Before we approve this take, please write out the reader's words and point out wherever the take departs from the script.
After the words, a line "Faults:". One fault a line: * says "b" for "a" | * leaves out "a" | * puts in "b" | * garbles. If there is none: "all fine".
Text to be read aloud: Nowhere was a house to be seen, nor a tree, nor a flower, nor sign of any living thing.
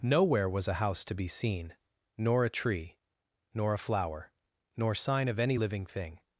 Nowhere was a house to be seen, nor a tree, nor a flower, nor sign of any living thing.
Faults:
all fine